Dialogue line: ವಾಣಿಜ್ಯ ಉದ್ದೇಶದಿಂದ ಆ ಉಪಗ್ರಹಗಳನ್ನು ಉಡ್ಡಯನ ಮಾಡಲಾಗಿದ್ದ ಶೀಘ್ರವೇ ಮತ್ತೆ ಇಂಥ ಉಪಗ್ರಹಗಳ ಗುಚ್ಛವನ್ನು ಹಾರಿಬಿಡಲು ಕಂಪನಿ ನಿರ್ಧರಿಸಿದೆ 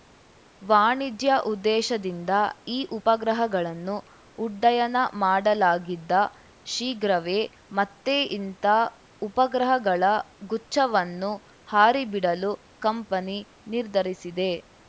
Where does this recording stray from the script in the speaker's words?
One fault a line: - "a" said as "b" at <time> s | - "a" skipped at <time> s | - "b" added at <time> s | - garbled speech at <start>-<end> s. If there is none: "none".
- "ಆ" said as "ಈ" at 2.7 s